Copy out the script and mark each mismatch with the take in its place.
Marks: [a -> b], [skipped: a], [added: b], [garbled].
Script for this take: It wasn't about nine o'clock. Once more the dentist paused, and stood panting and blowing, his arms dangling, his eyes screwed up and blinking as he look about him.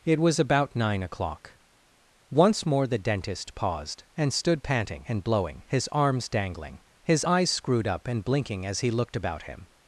It [wasn't -> was] about nine o'clock. Once more the dentist paused, and stood panting and blowing, his arms dangling, his eyes screwed up and blinking as he [look -> looked] about him.